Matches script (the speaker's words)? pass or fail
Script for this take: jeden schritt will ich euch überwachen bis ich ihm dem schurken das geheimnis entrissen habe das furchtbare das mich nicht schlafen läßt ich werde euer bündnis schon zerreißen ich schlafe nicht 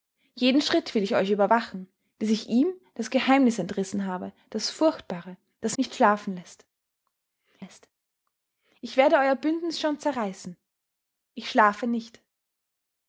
fail